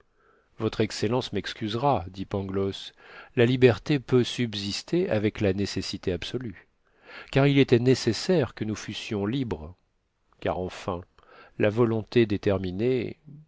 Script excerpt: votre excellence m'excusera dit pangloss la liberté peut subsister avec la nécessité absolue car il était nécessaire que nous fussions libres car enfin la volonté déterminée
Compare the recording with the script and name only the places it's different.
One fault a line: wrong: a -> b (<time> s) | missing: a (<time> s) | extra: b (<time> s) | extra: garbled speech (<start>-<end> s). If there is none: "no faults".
no faults